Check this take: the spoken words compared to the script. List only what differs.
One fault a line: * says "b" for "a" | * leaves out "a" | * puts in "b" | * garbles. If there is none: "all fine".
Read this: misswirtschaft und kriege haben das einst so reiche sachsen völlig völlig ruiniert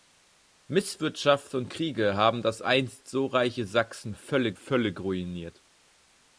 all fine